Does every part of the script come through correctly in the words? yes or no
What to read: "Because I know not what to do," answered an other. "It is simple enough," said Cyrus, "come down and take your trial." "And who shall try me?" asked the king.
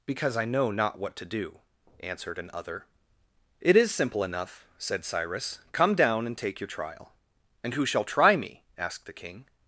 yes